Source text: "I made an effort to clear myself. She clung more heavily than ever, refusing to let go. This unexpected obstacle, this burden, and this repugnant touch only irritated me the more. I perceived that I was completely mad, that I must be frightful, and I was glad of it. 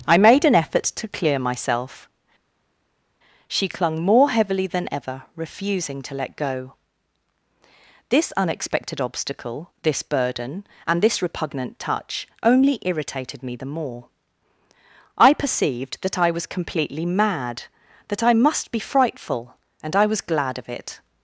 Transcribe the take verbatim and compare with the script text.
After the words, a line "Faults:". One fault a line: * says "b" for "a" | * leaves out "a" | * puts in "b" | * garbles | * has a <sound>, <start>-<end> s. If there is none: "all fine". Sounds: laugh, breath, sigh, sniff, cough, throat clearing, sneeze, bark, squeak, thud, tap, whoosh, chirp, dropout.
"I made an effort to clear myself. She clung more heavily than ever, refusing to let go. This unexpected obstacle, this burden, and this repugnant touch only irritated me the more. I perceived that I was completely mad, that I must be frightful, and I was glad of it.
Faults:
all fine